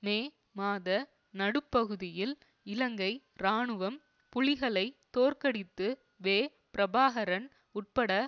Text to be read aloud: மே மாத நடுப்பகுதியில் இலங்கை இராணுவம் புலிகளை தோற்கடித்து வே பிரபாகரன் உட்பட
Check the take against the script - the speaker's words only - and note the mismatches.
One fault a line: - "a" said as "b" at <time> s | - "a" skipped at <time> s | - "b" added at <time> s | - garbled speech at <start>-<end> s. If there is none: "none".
none